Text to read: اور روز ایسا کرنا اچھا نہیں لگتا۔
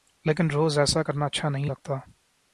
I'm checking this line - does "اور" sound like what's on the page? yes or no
no